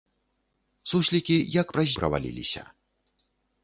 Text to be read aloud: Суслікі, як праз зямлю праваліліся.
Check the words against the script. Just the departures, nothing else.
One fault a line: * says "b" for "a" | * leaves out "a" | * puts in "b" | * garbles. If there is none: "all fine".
* leaves out "зямлю"